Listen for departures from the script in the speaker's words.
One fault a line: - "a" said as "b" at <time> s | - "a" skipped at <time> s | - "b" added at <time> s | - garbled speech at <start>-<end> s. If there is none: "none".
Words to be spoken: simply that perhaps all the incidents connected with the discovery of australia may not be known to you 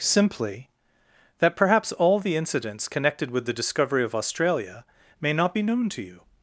none